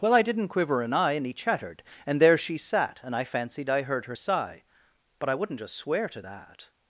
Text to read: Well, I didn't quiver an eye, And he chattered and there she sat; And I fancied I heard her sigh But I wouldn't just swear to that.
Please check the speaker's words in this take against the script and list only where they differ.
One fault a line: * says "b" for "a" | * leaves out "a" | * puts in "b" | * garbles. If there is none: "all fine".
all fine